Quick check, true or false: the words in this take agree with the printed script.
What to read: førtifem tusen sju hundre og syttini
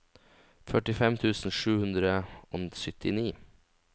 true